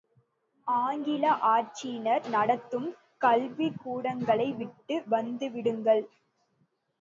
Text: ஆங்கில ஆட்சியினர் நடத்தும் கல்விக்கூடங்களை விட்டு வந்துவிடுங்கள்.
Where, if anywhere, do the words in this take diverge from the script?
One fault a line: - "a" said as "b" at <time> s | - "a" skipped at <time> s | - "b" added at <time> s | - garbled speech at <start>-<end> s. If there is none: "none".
none